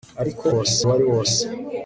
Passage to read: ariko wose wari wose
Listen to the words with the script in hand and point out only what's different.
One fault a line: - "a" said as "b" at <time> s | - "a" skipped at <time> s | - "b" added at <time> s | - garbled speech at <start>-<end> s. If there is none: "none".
none